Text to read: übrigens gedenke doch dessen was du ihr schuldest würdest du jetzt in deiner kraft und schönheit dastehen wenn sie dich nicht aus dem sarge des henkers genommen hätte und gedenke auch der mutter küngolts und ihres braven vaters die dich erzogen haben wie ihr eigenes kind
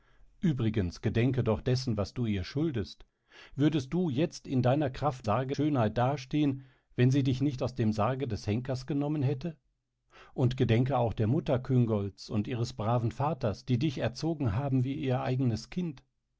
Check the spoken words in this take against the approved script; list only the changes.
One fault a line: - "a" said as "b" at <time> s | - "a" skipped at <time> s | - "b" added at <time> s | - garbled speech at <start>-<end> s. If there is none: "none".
- "und" said as "sarge" at 5.2 s